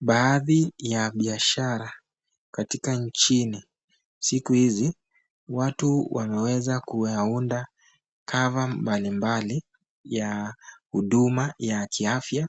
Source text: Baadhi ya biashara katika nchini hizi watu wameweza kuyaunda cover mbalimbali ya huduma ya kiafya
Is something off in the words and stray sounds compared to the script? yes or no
yes